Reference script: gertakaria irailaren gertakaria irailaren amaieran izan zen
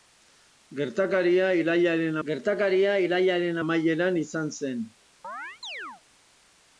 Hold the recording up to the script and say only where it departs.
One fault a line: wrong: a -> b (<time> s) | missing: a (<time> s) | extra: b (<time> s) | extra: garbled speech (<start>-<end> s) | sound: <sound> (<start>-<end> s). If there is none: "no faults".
sound: chirp (5.2-6.0 s)